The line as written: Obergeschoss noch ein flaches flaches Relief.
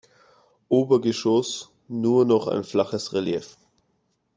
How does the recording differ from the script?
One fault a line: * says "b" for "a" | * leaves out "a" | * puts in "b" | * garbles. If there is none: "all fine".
* puts in "nur"
* leaves out "flaches"